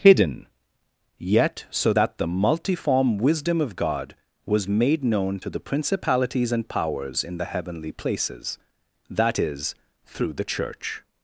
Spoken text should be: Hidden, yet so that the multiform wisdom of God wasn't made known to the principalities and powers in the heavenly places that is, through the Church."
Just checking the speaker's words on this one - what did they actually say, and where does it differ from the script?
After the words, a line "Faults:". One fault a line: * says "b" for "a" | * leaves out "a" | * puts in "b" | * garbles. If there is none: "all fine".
Hidden, yet so that the multiform wisdom of God was made known to the principalities and powers in the heavenly places that is, through the Church."
Faults:
* says "was" for "wasn't"